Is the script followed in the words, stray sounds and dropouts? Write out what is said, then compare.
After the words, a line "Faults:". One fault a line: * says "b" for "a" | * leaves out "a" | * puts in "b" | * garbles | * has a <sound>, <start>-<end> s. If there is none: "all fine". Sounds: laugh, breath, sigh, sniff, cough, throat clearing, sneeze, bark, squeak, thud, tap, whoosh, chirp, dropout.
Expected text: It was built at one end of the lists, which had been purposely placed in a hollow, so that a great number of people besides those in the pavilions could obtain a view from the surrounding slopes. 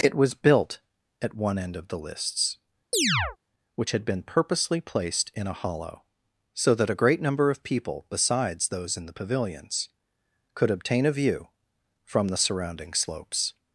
It was built at one end of the lists, which had been purposely placed in a hollow, so that a great number of people besides those in the pavilions could obtain a view from the surrounding slopes.
Faults:
* has a chirp, 2.9-3.4 s